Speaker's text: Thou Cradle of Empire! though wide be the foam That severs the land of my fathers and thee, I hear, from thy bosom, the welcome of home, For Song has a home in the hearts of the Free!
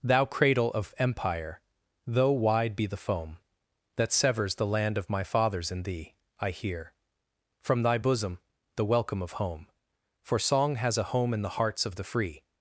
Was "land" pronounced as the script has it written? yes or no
yes